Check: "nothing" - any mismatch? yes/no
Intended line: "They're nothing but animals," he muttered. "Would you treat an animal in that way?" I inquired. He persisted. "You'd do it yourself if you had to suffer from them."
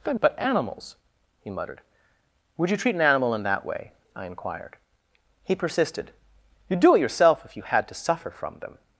yes